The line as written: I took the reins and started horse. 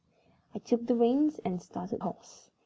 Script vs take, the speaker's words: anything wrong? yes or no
no